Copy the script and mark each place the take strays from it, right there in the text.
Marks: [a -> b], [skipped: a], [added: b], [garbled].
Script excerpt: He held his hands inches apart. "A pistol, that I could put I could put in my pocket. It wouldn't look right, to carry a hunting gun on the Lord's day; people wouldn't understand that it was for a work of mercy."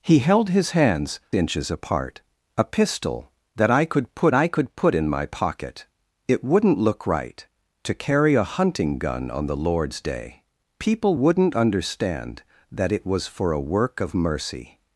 He held his hands inches apart. "A pistol, that I could put I could put in my pocket. It wouldn't look right, to carry a hunting gun on the Lord's day; people wouldn't understand that it was for a work of mercy."